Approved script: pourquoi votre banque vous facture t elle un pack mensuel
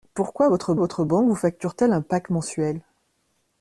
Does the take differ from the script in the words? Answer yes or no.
yes